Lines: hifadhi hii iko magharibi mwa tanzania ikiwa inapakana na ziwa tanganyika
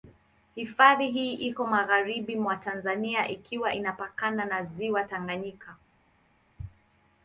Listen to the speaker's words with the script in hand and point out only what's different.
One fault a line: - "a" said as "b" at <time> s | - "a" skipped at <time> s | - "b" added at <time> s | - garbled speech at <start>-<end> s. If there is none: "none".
none